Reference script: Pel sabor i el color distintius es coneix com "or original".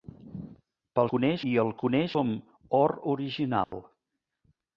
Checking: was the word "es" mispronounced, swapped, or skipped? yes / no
yes